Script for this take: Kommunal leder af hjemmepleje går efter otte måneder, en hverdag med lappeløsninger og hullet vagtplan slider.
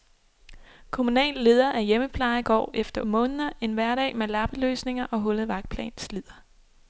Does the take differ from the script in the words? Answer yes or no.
yes